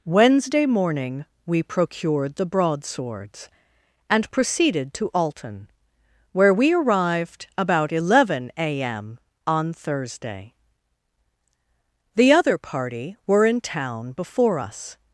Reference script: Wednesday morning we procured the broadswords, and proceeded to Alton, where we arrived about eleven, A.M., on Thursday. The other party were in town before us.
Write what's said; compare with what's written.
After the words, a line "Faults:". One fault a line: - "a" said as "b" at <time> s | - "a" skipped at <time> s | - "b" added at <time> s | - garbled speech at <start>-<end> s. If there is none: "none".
Wednesday morning we procured the broadswords, and proceeded to Alton, where we arrived about eleven, A.M., on Thursday. The other party were in town before us.
Faults:
none